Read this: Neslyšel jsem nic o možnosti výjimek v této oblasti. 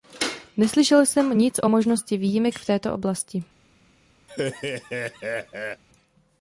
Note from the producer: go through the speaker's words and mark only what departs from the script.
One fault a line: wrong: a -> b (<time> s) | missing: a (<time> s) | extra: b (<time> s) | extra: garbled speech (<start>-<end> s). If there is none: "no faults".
no faults